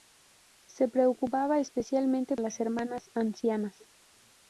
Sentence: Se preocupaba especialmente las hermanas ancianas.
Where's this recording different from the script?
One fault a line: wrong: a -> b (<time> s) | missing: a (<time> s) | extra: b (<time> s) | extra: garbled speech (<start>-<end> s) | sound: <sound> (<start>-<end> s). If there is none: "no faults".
no faults